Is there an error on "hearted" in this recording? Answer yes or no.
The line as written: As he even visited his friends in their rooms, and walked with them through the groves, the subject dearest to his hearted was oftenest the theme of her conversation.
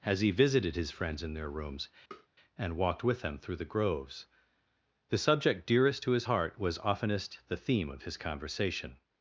yes